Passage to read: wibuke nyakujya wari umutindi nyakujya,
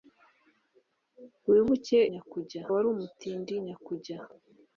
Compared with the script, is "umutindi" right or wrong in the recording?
right